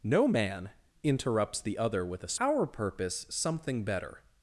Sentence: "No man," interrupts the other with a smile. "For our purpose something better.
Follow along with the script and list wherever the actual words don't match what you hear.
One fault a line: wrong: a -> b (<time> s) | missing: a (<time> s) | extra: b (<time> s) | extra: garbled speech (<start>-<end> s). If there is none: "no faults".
missing: smile For (2.4 s)